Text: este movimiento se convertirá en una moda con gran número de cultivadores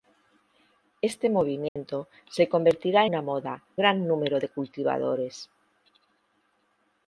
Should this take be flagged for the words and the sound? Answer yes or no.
yes